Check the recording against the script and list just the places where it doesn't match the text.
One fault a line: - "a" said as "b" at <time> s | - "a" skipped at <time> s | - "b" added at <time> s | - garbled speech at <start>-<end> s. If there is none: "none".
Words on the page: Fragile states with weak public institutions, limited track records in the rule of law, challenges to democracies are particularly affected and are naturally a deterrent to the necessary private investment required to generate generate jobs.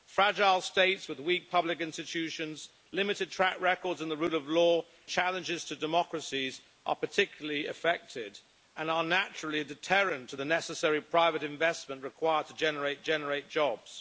none